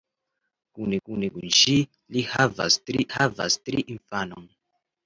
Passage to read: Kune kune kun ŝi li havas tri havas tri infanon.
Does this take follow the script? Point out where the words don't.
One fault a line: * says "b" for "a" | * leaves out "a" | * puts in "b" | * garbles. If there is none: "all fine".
all fine